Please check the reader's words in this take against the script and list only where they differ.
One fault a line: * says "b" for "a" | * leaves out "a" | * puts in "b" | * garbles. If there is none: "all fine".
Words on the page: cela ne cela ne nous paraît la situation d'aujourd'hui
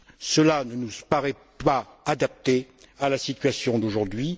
* says "nous paraît pas adapté à" for "cela ne nous paraît"